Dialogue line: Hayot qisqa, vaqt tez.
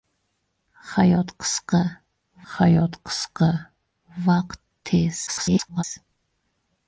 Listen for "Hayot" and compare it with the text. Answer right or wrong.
right